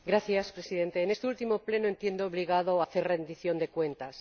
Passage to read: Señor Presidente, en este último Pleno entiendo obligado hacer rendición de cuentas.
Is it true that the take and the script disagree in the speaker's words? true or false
false